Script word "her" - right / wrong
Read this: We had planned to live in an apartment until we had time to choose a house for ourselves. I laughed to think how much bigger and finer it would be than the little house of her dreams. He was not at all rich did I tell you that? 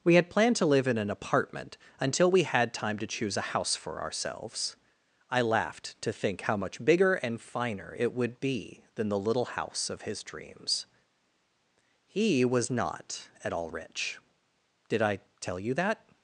wrong